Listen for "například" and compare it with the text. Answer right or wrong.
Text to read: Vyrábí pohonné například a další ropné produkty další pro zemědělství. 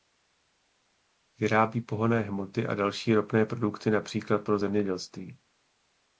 wrong